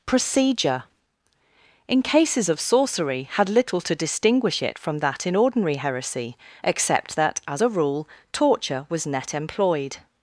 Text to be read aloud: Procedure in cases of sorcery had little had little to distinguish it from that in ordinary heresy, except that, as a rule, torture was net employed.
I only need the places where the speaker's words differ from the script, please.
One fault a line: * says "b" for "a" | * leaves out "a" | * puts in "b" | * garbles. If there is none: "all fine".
* leaves out "had little"